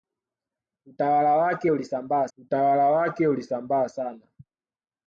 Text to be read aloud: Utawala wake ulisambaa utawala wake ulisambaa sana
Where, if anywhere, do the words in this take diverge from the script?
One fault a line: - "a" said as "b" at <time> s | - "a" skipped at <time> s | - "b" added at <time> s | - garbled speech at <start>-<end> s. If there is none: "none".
none